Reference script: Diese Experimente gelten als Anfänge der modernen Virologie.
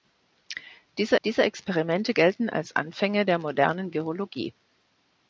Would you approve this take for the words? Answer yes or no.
no